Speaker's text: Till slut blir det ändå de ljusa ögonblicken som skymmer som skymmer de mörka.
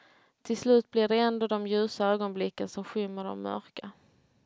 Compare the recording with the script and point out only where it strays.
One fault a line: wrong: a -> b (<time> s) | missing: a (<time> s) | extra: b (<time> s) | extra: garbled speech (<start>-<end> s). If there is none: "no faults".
missing: som skymmer (3.2 s)